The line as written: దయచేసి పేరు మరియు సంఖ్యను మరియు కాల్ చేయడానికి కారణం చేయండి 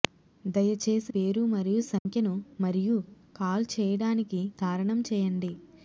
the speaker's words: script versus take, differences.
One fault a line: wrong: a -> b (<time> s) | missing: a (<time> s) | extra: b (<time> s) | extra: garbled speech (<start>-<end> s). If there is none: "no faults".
no faults